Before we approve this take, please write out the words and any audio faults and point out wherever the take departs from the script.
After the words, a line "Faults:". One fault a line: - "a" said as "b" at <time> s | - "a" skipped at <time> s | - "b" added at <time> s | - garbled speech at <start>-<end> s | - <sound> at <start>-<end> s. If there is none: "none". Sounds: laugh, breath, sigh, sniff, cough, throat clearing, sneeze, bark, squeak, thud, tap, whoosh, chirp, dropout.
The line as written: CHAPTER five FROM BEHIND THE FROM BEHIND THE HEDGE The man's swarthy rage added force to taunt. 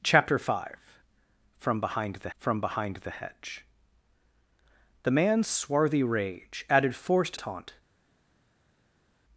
CHAPTER five FROM BEHIND THE FROM BEHIND THE HEDGE The man's swarthy rage added force to taunt.
Faults:
none